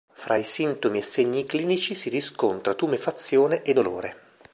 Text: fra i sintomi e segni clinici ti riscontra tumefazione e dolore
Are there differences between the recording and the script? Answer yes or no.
yes